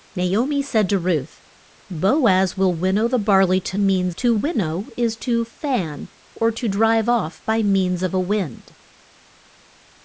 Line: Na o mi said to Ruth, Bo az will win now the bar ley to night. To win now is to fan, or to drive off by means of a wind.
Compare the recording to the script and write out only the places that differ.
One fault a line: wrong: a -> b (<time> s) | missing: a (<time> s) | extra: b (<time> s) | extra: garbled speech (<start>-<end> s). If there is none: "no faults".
wrong: night -> means (3.8 s)